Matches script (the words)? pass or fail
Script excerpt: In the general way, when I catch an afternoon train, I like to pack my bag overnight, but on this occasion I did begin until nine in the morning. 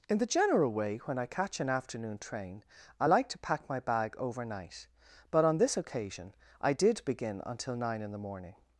pass